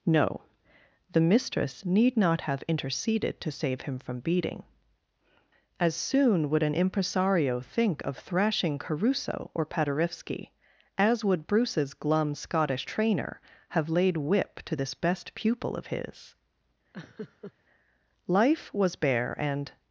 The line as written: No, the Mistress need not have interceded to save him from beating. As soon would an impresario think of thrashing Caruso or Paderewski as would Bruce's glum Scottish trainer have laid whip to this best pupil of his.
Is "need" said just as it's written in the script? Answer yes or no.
yes